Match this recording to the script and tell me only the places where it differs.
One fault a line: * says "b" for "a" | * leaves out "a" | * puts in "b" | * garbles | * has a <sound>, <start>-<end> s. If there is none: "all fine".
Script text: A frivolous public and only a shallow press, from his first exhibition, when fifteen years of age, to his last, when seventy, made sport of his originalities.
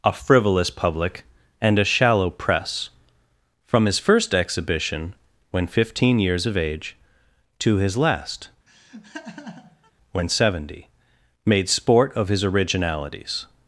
* leaves out "only"
* has a laugh, 8.7-9.9 s